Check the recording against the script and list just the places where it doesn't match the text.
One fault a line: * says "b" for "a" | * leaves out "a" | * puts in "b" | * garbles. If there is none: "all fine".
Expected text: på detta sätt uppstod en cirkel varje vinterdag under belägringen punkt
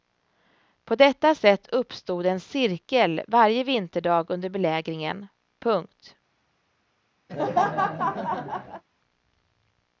all fine